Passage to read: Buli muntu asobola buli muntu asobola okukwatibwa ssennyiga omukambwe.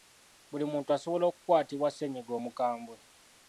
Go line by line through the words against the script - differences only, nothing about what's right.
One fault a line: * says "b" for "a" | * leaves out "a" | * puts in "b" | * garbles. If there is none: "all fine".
* leaves out "buli muntu asobola"